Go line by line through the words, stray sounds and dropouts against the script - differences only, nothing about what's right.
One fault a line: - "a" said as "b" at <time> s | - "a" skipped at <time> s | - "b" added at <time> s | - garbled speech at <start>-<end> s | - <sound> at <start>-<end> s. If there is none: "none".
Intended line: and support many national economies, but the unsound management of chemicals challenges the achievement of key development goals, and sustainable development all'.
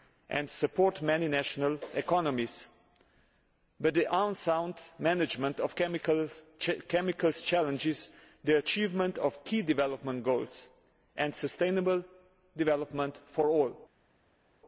- "for" added at 13.3 s